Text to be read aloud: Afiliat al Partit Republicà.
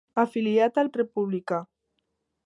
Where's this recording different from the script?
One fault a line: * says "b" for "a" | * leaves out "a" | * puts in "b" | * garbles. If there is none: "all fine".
* leaves out "Partit"